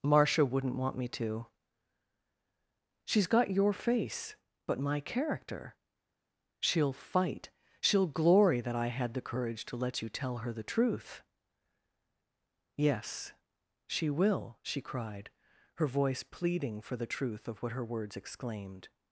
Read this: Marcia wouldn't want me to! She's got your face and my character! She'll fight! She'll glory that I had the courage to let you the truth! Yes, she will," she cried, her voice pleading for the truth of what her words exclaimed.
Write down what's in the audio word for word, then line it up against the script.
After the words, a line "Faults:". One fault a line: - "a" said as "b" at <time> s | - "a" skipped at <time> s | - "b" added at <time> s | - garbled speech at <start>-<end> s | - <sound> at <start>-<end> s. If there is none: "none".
Marcia wouldn't want me to! She's got your face but my character! She'll fight! She'll glory that I had the courage to let you tell her the truth! Yes, she will," she cried, her voice pleading for the truth of what her words exclaimed.
Faults:
- "and" said as "but" at 4.7 s
- "tell her" added at 10.1 s